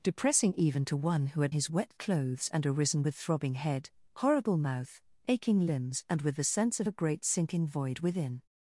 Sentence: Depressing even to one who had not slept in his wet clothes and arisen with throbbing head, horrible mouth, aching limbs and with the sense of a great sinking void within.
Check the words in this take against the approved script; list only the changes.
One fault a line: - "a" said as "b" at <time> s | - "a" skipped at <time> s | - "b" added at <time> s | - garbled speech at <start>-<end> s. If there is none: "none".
- "not slept in" skipped at 1.6 s